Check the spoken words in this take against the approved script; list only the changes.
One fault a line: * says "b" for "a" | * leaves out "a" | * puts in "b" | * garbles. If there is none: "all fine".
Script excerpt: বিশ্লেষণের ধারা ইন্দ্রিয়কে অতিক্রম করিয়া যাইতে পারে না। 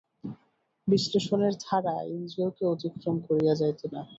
* leaves out "পারে"